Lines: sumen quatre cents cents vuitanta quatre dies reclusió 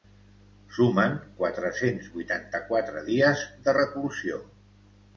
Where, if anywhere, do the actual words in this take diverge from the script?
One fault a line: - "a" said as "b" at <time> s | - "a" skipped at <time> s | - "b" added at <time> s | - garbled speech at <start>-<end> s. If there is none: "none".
- "cents" skipped at 2.1 s
- "de" added at 3.7 s